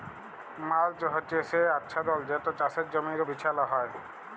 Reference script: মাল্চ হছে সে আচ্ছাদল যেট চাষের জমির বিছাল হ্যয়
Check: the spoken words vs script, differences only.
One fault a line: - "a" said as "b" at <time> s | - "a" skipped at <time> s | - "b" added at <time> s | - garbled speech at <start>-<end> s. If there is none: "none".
none